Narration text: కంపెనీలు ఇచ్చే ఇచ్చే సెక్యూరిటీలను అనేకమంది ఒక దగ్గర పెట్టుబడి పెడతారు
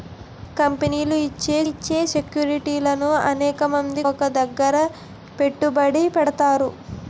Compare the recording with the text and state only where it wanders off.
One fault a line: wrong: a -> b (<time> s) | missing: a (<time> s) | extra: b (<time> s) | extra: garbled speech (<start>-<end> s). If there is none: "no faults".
no faults